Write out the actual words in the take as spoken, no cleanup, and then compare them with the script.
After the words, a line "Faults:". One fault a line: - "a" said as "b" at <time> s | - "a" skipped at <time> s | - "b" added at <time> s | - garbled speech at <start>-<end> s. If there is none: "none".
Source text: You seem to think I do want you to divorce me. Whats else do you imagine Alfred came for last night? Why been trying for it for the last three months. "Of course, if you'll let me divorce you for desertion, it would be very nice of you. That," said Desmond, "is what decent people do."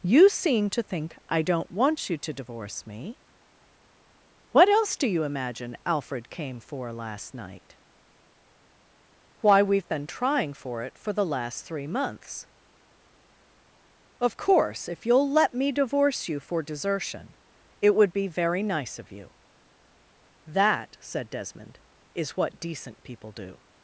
You seem to think I don't want you to divorce me. What else do you imagine Alfred came for last night? Why we've been trying for it for the last three months. "Of course, if you'll let me divorce you for desertion, it would be very nice of you. That," said Desmond, "is what decent people do."
Faults:
- "do" said as "don't" at 1.4 s
- "Whats" said as "What" at 4.5 s
- "we've" added at 9.6 s